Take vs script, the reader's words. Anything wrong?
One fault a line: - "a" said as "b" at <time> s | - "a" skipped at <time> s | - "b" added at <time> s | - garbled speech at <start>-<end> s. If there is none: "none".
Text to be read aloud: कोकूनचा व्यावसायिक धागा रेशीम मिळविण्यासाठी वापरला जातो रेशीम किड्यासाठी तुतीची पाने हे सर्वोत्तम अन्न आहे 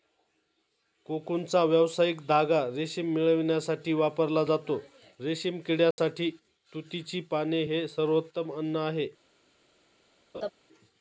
none